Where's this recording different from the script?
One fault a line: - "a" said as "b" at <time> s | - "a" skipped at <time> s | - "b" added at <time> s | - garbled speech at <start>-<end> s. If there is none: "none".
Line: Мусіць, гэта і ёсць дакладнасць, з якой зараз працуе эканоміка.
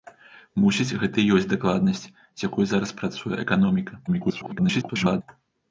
- garbled speech at 4.1-5.2 s